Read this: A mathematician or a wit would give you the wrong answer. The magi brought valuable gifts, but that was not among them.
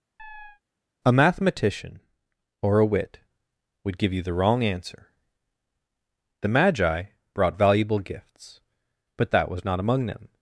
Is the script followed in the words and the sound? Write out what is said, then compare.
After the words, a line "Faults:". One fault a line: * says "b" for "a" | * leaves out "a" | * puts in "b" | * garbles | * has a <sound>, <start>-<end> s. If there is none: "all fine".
A mathematician or a wit would give you the wrong answer. The magi brought valuable gifts, but that was not among them.
Faults:
* has a chirp, 0.2-0.6 s